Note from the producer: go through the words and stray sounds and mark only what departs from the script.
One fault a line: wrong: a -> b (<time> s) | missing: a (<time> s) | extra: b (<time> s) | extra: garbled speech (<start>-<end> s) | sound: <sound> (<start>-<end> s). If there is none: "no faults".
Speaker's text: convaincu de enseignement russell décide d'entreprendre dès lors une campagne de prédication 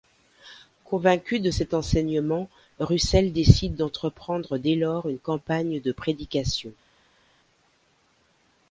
extra: cet (1.5 s)